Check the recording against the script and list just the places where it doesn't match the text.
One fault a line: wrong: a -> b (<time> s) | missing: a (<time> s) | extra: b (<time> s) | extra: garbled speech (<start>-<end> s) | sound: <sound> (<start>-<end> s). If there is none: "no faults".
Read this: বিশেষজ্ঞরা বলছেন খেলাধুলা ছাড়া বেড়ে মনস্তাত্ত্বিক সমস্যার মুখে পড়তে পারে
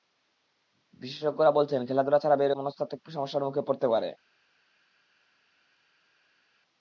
no faults